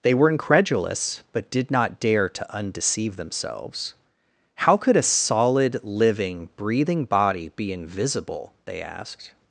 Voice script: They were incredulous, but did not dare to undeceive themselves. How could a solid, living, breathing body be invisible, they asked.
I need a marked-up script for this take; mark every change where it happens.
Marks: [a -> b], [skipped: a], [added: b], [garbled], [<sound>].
They were incredulous, but did not dare to undeceive themselves. How could a solid, living, breathing body be invisible, they asked.